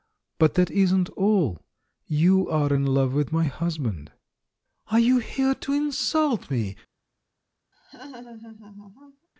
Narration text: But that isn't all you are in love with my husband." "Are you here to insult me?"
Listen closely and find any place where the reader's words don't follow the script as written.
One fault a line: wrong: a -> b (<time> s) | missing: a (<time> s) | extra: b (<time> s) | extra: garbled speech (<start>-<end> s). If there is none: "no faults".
no faults